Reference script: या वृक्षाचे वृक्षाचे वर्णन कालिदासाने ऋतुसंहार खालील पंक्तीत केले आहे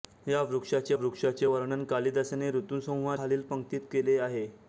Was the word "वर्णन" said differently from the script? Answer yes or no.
no